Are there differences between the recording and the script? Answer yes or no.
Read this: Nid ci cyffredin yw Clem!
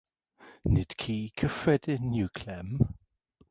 no